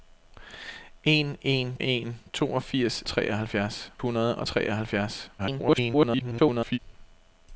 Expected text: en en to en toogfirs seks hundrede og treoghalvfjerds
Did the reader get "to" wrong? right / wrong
wrong